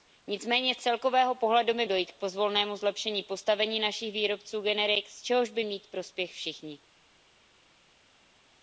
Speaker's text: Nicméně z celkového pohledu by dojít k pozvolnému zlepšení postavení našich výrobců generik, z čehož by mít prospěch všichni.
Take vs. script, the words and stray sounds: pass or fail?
pass